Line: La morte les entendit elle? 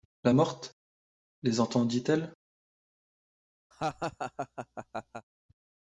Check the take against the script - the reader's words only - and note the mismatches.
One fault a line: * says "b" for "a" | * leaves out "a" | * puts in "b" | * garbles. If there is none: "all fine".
all fine